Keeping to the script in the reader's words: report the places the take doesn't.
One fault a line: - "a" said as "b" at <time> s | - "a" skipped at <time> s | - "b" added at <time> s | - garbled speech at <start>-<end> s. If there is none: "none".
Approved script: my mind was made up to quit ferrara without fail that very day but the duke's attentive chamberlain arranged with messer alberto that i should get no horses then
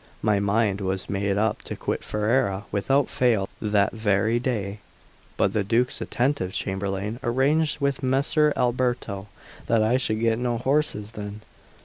none